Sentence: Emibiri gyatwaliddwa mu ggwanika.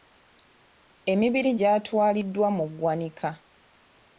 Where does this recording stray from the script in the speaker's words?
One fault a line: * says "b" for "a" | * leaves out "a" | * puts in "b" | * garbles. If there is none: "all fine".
all fine